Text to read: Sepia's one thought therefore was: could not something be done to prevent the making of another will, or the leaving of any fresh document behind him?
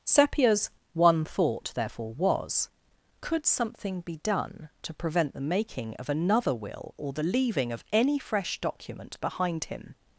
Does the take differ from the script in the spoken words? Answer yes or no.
yes